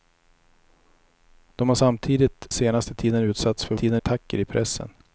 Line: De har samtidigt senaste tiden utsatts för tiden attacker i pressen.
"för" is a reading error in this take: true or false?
false